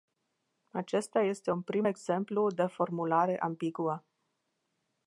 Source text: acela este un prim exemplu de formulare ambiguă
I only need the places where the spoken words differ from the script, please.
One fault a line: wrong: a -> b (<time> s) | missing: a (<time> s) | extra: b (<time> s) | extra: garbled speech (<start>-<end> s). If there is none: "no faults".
wrong: acela -> acesta (0.7 s)